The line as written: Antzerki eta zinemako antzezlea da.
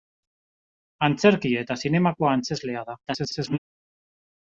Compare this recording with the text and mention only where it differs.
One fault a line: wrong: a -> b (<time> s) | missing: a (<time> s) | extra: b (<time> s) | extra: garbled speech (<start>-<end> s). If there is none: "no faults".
extra: garbled speech (3.1-3.6 s)